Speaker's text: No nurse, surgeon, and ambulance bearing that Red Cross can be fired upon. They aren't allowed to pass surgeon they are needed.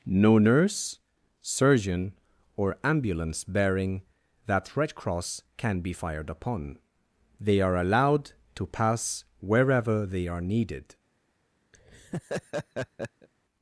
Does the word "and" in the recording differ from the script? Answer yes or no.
yes